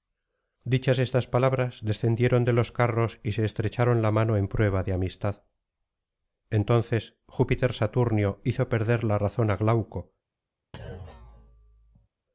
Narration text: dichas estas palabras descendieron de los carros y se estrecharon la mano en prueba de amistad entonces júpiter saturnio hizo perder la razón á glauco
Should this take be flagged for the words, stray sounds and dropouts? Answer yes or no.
yes